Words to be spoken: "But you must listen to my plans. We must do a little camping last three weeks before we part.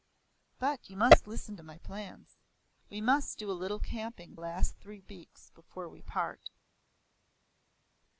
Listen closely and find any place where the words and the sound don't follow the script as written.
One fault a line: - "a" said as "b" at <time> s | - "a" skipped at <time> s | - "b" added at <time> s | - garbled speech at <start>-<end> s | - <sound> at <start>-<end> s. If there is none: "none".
none